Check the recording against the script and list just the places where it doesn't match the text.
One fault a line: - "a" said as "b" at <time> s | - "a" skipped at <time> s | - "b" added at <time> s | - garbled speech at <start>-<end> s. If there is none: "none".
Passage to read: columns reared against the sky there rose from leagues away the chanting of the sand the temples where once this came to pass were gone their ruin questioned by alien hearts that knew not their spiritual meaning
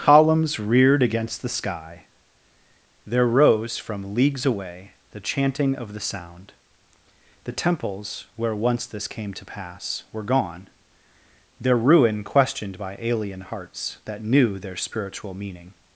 - "sand" said as "sound" at 6.0 s
- "not" skipped at 14.6 s